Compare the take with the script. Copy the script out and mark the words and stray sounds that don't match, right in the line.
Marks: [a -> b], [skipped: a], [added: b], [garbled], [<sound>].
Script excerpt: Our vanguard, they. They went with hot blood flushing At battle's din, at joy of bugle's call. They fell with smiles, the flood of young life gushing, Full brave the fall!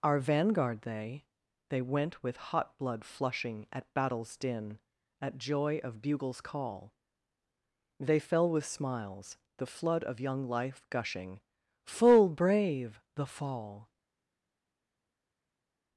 Our vanguard, they. They went with hot blood flushing At battle's din, at joy of bugle's call. They fell with smiles, the flood of young life gushing, Full brave the fall!